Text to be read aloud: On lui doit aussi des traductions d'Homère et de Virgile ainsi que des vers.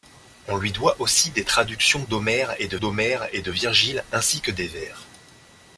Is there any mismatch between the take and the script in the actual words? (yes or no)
yes